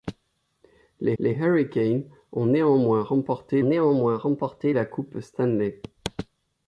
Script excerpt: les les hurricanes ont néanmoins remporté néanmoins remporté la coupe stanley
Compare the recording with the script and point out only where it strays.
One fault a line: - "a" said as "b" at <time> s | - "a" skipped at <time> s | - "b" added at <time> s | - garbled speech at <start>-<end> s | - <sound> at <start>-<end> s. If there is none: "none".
none